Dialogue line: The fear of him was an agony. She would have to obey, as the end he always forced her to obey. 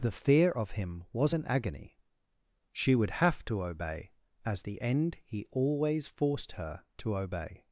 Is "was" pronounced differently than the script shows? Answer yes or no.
no